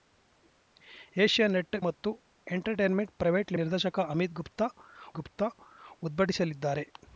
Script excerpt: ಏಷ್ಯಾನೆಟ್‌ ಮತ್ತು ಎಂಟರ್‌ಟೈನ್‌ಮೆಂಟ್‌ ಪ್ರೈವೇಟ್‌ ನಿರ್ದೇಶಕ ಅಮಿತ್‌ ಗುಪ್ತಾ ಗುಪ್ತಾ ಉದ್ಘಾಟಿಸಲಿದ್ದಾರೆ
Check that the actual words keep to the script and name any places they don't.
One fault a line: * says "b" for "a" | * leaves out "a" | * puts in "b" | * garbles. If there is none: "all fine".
all fine